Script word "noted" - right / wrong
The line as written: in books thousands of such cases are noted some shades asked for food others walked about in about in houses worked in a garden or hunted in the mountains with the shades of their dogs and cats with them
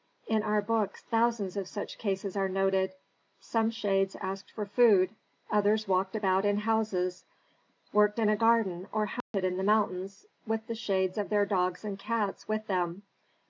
right